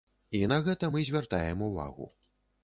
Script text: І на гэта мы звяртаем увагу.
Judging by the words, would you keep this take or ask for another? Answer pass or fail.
pass